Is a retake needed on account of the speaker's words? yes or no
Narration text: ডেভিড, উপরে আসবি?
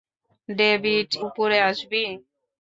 no